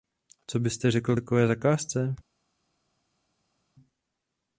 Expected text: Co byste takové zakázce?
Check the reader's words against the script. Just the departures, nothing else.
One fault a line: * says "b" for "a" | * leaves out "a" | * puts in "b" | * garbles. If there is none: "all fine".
* puts in "řekl"